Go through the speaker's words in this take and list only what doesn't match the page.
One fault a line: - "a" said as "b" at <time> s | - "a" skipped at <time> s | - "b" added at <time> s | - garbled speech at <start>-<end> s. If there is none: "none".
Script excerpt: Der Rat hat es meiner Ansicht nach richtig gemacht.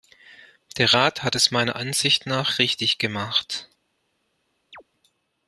none